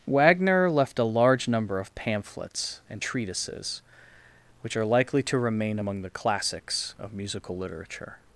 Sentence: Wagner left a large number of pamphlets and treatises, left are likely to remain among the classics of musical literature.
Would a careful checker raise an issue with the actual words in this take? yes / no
yes